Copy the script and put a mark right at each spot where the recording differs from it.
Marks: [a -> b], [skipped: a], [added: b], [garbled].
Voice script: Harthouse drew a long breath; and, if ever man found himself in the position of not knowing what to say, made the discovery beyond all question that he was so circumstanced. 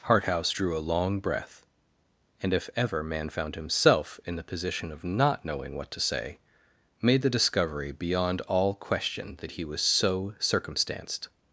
Harthouse drew a long breath; and, if ever man found himself in the position of not knowing what to say, made the discovery beyond all question that he was so circumstanced.